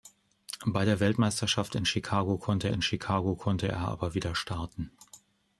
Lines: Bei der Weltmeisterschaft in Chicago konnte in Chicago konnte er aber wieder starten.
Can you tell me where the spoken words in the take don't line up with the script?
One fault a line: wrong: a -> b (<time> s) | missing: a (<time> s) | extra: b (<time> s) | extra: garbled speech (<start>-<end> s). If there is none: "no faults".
no faults